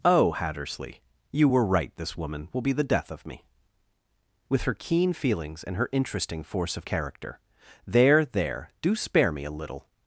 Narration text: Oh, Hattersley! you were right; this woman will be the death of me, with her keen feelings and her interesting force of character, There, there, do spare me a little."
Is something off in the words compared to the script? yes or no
no